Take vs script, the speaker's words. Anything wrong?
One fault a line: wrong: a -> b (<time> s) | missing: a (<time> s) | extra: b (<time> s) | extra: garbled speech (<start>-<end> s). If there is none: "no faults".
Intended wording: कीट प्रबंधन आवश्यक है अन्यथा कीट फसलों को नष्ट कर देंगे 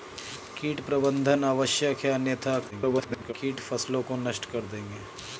extra: garbled speech (2.7-3.3 s)